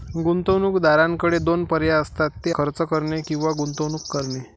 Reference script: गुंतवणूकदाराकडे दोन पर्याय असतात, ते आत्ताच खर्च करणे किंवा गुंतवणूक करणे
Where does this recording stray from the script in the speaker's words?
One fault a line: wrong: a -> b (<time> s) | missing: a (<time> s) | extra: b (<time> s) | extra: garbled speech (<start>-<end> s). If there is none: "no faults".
missing: आत्ताच (2.5 s)